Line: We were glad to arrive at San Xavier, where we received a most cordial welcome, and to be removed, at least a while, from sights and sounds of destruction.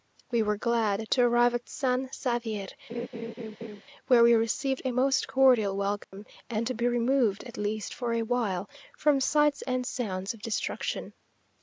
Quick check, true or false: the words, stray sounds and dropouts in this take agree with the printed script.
false